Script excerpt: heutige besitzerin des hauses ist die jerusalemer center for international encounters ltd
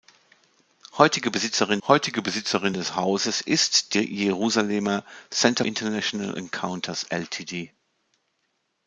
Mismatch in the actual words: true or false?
true